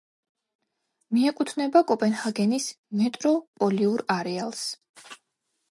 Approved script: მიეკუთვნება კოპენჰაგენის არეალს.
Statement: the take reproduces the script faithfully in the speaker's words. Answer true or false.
false